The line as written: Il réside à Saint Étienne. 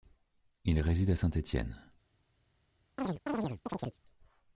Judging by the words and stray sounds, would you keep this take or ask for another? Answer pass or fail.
fail